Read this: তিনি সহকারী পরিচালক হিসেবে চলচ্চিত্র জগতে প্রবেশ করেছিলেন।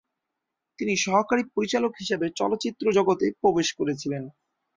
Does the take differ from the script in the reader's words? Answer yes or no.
no